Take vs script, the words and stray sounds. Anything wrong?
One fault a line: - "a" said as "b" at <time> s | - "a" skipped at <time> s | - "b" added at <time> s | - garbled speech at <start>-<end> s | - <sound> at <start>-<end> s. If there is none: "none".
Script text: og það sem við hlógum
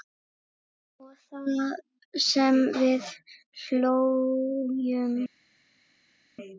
none